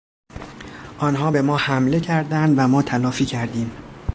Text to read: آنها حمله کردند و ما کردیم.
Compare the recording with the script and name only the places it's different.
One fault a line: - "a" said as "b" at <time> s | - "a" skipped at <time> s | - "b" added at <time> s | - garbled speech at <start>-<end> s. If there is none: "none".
- "به ما" added at 1.3 s
- "تلافی" added at 2.8 s